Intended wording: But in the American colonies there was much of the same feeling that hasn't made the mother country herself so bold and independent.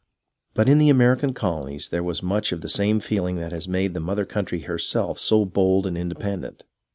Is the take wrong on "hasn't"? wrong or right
wrong